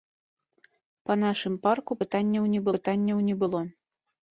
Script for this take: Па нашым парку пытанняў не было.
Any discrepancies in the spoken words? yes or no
yes